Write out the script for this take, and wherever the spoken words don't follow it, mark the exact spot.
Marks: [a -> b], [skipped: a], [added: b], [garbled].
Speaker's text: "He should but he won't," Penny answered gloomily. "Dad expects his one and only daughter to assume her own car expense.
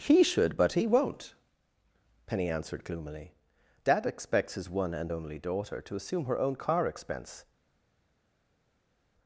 "He should but he won't," Penny answered gloomily. "Dad expects his one and only daughter to assume her own car expense.